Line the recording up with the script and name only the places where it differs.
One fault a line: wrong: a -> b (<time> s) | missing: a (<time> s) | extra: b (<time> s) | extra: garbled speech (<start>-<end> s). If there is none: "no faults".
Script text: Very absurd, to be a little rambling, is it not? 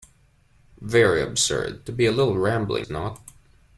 missing: is (2.9 s)